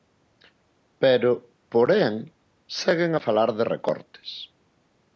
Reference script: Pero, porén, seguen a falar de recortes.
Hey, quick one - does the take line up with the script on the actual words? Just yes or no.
yes